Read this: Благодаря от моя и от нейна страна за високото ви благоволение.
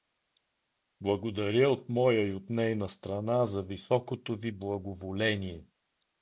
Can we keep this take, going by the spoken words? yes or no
yes